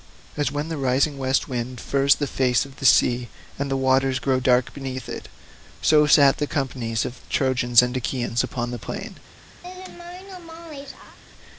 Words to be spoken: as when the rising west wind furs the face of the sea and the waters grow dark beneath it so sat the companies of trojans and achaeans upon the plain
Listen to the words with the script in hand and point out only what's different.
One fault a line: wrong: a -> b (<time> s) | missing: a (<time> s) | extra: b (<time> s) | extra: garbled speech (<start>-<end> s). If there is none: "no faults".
no faults